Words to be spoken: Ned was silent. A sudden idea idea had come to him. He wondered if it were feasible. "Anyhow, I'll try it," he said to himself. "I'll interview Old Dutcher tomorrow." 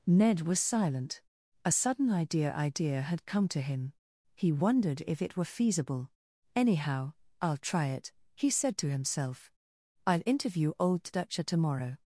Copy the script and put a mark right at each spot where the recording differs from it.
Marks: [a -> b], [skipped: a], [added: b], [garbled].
Ned was silent. A sudden idea idea had come to him. He wondered if it were feasible. "Anyhow, I'll try it," he said to himself. "I'll interview Old Dutcher tomorrow."